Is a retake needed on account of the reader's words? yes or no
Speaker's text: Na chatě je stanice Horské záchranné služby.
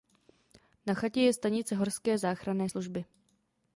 no